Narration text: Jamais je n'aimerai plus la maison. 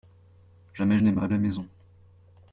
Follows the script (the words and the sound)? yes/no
no